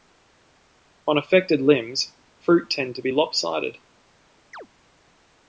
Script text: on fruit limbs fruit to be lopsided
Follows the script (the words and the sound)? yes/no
no